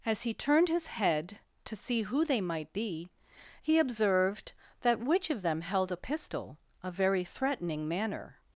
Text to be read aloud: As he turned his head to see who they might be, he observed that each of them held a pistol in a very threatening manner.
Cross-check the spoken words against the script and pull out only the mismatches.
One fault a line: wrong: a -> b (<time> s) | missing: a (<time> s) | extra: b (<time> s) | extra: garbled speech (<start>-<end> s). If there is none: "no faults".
wrong: each -> which (5.0 s)
missing: in (6.6 s)